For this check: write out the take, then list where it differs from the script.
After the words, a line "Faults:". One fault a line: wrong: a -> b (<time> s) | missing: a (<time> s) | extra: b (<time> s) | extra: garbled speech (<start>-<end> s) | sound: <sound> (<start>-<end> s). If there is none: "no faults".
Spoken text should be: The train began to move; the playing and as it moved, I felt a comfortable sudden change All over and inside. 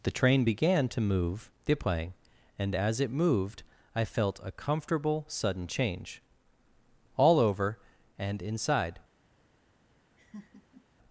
The train began to move; the playing and as it moved, I felt a comfortable sudden change All over and inside.
Faults:
sound: laugh (10.2-10.9 s)